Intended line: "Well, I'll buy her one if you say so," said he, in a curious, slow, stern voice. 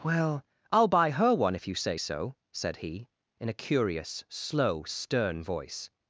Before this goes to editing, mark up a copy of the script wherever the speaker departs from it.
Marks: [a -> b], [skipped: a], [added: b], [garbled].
"Well, I'll buy her one if you say so," said he, in a curious, slow, stern voice.